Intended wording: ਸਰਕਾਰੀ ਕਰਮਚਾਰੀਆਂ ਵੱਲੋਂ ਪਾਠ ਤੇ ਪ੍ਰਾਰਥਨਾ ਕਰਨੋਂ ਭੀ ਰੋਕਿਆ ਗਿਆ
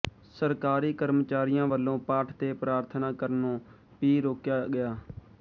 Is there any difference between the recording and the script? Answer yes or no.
no